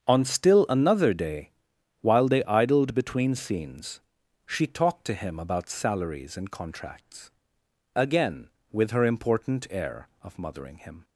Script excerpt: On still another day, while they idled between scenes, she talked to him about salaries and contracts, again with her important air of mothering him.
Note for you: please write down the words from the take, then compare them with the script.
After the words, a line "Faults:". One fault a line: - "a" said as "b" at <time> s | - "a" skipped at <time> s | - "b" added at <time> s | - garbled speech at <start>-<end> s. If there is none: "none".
On still another day, while they idled between scenes, she talked to him about salaries and contracts, again with her important air of mothering him.
Faults:
none